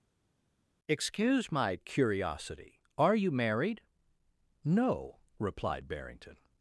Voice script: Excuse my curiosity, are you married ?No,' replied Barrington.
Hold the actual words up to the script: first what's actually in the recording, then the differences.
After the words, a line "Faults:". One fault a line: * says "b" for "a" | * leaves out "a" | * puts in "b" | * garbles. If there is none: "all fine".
Excuse my curiosity, are you married ?No,' replied Barrington.
Faults:
all fine